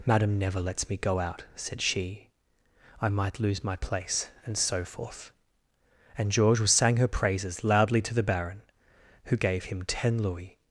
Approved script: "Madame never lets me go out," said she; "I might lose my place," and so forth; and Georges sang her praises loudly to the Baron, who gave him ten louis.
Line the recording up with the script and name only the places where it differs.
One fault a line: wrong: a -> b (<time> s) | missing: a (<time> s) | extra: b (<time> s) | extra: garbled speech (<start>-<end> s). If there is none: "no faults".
no faults